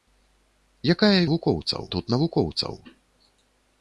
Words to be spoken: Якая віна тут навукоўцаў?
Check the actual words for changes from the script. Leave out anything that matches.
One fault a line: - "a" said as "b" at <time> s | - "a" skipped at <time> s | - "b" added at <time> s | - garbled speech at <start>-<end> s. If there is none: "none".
- "віна" said as "навукоўцаў" at 1.3 s